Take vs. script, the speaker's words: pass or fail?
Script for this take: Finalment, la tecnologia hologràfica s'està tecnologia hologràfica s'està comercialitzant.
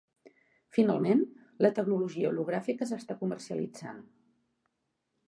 fail